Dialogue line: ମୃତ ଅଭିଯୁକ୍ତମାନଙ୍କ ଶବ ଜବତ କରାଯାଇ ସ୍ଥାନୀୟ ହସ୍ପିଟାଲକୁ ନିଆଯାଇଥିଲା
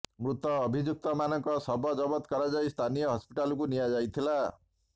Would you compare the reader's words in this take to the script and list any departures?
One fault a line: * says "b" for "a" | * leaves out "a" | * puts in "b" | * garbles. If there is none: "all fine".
all fine